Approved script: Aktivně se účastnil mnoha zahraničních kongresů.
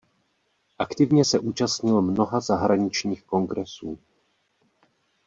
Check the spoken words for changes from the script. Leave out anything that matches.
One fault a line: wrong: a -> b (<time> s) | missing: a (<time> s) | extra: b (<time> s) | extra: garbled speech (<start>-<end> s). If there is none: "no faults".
no faults